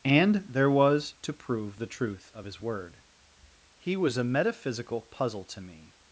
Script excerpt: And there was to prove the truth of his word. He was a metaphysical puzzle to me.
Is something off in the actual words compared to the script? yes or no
no